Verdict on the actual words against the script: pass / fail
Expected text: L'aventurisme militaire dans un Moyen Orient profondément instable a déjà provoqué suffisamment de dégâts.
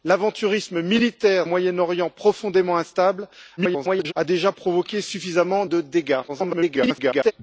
fail